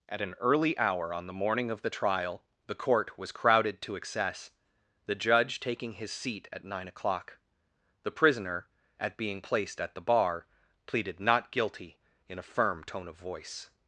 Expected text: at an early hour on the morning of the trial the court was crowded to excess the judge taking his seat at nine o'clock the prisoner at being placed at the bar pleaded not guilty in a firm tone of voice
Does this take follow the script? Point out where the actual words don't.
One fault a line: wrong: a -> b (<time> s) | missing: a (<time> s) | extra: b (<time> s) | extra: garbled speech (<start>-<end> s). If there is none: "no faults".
no faults